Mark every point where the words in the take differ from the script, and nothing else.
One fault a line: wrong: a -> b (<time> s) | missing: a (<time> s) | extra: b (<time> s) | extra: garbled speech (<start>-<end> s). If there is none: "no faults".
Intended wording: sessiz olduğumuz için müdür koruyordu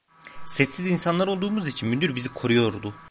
extra: insanlar (0.8 s)
extra: bizi (2.2 s)